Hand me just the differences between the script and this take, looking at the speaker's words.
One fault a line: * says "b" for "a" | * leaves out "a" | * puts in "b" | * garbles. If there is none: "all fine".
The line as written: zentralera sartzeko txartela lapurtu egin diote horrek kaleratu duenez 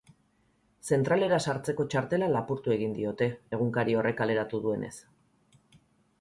* puts in "egunkari"